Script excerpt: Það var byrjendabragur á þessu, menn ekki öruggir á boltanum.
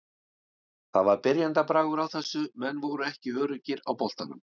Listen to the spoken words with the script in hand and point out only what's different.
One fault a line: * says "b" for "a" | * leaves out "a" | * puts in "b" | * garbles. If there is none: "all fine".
* puts in "voru"